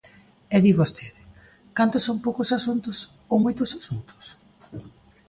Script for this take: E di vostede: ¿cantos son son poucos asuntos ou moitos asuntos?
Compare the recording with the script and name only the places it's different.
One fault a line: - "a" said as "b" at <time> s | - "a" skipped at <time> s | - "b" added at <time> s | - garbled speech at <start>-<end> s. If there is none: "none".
- "son" skipped at 2.2 s